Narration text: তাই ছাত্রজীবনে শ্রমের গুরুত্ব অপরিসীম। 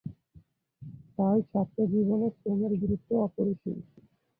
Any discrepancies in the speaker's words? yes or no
no